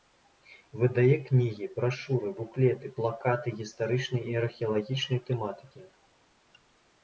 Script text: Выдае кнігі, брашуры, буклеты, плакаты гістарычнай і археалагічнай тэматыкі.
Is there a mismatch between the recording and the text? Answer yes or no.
no